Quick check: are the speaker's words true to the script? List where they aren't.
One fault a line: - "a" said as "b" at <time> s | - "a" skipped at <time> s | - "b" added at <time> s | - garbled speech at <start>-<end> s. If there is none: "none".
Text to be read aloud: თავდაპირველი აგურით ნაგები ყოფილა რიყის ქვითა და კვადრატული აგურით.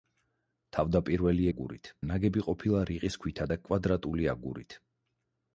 none